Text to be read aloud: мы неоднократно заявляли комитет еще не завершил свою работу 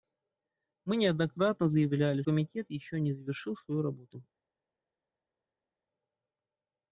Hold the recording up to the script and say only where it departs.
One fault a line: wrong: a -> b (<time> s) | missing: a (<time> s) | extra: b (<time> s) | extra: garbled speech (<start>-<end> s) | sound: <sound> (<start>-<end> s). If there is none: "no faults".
no faults